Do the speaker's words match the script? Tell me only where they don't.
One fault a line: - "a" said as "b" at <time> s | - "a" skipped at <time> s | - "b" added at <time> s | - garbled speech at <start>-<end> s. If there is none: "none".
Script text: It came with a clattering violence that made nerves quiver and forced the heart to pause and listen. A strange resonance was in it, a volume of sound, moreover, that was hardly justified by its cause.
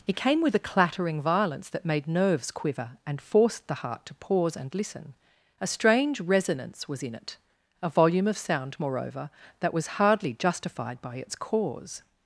none